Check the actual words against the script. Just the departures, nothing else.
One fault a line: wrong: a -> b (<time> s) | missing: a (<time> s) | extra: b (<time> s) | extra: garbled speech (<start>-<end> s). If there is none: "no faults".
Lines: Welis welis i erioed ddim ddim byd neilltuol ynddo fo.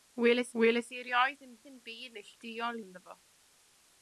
no faults